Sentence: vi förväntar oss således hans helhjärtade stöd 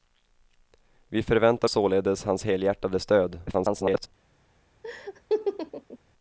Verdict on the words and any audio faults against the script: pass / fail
fail